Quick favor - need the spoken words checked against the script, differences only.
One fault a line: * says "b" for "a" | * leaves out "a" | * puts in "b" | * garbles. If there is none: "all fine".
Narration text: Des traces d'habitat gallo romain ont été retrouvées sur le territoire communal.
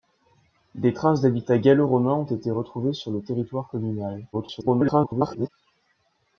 * garbles